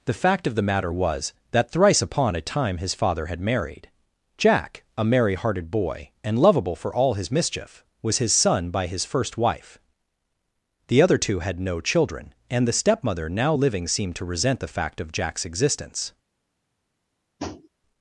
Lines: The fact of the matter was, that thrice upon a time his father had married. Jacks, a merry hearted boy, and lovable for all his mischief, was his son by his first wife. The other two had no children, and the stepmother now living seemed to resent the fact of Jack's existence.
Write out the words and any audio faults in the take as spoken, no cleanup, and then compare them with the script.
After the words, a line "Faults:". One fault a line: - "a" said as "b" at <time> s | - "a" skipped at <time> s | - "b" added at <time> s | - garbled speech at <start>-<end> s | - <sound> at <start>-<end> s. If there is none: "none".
The fact of the matter was, that thrice upon a time his father had married. Jack, a merry hearted boy, and lovable for all his mischief, was his son by his first wife. The other two had no children, and the stepmother now living seemed to resent the fact of Jack's existence.
Faults:
- "Jacks" said as "Jack" at 4.3 s
- tap at 17.4-17.7 s